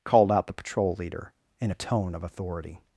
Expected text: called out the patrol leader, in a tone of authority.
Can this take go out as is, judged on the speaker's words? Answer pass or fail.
pass